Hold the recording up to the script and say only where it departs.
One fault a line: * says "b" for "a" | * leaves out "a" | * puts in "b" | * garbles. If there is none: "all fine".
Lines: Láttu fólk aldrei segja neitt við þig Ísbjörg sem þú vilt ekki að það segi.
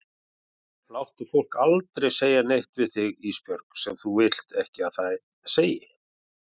all fine